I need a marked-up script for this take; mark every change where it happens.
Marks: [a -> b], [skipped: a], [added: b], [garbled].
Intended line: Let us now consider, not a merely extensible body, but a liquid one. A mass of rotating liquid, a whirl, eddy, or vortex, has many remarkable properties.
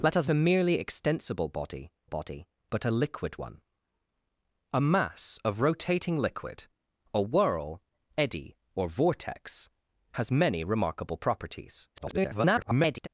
Let us [skipped: now consider, not] a merely extensible body, [added: body] but a liquid one. A mass of rotating liquid, a whirl, eddy, or vortex, has many remarkable properties. [garbled]